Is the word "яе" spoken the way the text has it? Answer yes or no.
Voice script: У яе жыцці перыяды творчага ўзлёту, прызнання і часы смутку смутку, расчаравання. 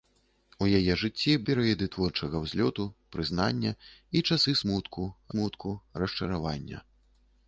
yes